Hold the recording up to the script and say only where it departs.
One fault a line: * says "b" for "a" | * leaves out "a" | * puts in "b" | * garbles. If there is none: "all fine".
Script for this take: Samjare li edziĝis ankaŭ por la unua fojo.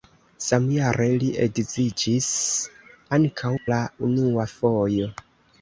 * leaves out "por"